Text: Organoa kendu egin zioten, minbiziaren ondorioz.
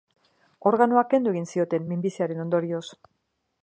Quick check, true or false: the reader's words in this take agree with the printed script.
true